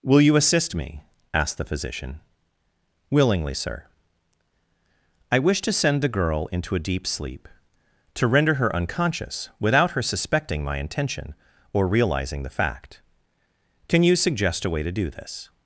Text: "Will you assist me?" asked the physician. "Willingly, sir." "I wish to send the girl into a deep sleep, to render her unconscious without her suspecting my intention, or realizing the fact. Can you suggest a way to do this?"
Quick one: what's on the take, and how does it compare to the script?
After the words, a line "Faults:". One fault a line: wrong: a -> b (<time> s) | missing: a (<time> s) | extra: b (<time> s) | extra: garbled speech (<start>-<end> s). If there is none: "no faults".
"Will you assist me?" asked the physician. "Willingly, sir." "I wish to send the girl into a deep sleep, to render her unconscious without her suspecting my intention, or realizing the fact. Can you suggest a way to do this?"
Faults:
no faults